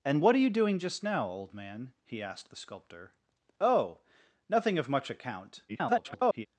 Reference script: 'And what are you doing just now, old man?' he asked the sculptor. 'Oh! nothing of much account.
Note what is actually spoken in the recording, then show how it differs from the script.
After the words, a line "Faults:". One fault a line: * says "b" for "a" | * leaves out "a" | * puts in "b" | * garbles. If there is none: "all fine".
'And what are you doing just now, old man?' he asked the sculptor. 'Oh! nothing of much account. [garbled]
Faults:
* garbles